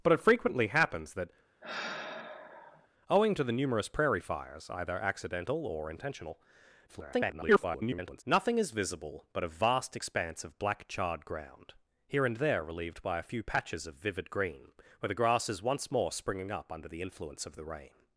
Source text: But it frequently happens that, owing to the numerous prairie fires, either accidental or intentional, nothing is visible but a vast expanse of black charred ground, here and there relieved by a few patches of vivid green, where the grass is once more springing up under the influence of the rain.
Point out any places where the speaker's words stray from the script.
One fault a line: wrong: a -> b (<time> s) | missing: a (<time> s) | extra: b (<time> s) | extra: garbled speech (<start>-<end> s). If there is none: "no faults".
extra: garbled speech (6.9-8.2 s)